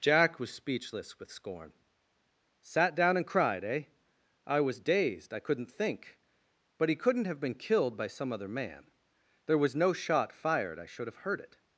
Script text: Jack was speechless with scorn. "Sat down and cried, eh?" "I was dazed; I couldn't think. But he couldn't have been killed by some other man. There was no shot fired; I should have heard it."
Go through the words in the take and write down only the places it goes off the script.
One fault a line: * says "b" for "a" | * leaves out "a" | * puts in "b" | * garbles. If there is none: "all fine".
all fine